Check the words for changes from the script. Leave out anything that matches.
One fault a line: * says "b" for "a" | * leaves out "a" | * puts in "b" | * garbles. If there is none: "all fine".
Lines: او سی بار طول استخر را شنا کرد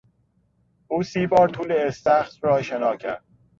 all fine